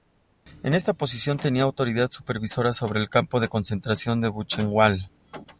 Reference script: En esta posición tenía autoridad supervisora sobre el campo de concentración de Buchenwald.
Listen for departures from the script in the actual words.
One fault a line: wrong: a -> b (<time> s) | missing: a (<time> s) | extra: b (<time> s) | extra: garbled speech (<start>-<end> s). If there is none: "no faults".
no faults